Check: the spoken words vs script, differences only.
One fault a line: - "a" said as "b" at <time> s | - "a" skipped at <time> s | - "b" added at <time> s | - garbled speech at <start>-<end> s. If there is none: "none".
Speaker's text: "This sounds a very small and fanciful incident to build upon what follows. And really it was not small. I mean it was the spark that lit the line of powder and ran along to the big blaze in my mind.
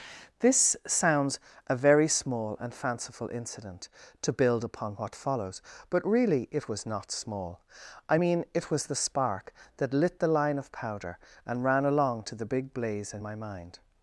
- "And" said as "But" at 5.9 s